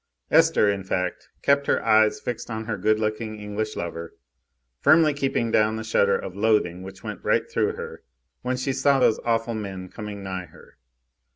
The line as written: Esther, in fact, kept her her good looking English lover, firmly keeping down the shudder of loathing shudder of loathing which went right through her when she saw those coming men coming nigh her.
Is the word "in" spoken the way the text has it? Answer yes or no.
yes